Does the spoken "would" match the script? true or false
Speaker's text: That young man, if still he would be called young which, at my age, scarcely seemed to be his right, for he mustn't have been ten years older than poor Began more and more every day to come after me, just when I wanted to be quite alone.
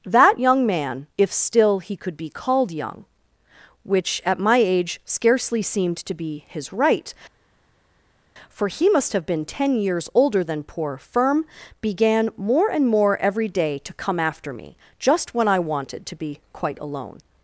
false